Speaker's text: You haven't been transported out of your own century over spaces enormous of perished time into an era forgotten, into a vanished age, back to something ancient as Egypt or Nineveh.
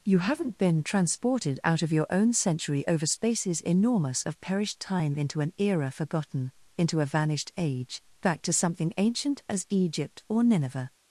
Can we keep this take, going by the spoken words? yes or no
yes